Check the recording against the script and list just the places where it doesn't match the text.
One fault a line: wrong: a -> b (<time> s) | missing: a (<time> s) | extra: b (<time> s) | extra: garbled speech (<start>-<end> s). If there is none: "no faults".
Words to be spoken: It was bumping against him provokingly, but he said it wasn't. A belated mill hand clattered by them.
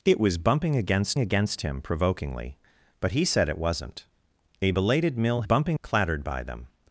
extra: against (1.2 s)
wrong: hand -> bumping (5.4 s)